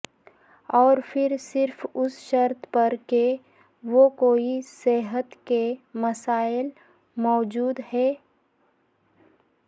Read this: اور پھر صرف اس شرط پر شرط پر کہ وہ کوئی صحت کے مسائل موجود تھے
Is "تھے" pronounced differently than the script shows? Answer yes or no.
yes